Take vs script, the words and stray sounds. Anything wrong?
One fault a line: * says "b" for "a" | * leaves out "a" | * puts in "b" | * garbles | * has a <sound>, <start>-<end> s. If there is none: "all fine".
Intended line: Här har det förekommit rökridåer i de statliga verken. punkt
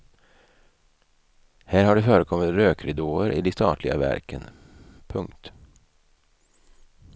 all fine